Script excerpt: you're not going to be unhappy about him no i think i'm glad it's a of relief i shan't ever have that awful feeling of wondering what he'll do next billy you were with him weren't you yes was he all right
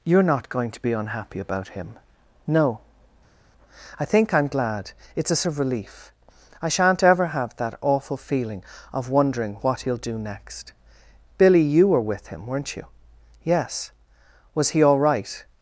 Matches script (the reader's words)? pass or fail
pass